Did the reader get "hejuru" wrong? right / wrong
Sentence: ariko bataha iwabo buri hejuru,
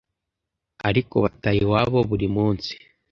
wrong